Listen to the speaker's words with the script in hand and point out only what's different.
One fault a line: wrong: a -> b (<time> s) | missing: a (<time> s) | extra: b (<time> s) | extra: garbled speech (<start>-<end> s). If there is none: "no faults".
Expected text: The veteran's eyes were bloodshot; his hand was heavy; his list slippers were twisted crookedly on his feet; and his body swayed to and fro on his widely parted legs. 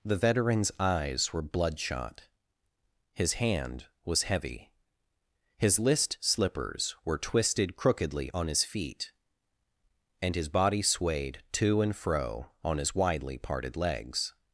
no faults